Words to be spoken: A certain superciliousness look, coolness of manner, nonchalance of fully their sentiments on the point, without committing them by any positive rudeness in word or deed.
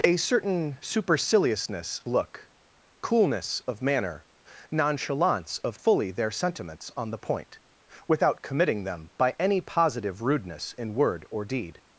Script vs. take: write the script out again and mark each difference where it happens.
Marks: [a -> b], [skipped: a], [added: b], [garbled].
A certain superciliousness look, coolness of manner, nonchalance of fully their sentiments on the point, without committing them by any positive rudeness in word or deed.